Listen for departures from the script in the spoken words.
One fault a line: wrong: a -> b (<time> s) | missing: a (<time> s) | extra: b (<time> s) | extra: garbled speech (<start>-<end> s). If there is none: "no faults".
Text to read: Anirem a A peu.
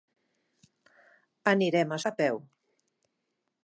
no faults